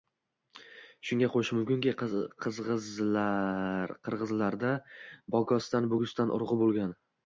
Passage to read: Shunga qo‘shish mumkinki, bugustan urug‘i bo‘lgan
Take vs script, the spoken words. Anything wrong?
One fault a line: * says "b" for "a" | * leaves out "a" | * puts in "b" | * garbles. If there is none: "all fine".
* puts in "qirg‘izlarda bogostan"